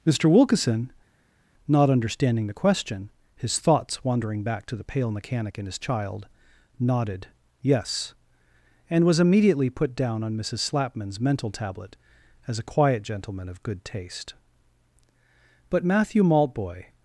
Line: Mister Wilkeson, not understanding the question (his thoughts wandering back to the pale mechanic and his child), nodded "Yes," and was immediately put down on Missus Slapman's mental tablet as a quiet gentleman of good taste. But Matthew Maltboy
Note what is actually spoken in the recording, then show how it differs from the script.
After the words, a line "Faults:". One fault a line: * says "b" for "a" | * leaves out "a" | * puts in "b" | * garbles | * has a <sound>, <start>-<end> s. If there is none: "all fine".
Mister Wilkeson, not understanding the question (his thoughts wandering back to the pale mechanic and his child), nodded "Yes," and was immediately put down on Missus Slapman's mental tablet as a quiet gentleman of good taste. But Matthew Maltboy
Faults:
all fine